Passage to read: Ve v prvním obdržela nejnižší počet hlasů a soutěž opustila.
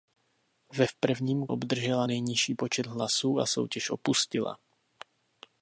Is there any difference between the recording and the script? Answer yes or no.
no